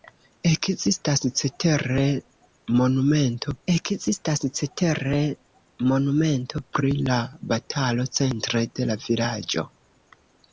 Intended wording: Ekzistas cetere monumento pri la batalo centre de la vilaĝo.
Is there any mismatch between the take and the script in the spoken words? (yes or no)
yes